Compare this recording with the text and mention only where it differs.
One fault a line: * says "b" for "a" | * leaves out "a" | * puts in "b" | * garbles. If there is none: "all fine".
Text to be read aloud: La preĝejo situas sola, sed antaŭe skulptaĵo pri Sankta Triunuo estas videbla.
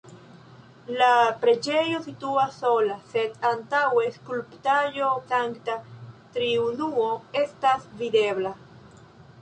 * leaves out "pri"